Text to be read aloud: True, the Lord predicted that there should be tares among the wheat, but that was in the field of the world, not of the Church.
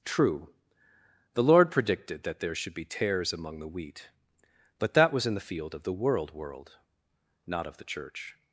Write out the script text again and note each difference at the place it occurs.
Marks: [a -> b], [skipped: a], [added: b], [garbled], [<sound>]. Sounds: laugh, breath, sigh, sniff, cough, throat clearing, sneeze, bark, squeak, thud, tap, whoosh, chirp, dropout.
True, the Lord predicted that there should be tares among the wheat, but that was in the field of the world, [added: world] not of the Church.